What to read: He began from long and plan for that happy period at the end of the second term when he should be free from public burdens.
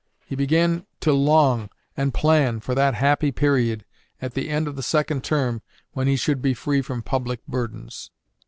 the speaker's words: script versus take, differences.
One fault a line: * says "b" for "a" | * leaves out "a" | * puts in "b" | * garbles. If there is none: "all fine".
* says "to" for "from"